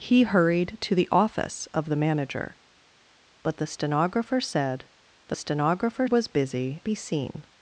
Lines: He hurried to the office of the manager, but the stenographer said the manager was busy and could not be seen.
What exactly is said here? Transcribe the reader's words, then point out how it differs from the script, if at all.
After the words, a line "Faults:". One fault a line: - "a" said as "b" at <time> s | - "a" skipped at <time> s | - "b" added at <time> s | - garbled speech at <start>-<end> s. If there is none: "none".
He hurried to the office of the manager, but the stenographer said the stenographer was busy be seen.
Faults:
- "manager" said as "stenographer" at 5.3 s
- "and could not" skipped at 6.8 s